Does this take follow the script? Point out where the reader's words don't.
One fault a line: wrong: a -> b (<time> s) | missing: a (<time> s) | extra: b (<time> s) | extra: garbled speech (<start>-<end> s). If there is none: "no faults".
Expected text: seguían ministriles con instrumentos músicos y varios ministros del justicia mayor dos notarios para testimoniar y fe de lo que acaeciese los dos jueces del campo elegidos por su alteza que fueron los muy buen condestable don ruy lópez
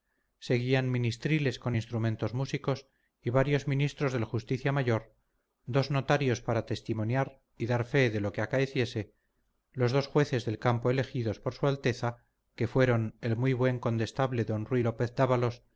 extra: dar (7.7 s)
wrong: los -> el (13.2 s)